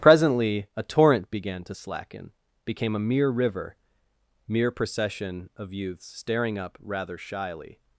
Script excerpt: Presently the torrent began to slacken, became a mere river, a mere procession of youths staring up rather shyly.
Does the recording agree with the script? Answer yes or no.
no